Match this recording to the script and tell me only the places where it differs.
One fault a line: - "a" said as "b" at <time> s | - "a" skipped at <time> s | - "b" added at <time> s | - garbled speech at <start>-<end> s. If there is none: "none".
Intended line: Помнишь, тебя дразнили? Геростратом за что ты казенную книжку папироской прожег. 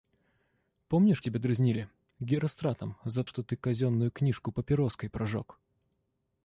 none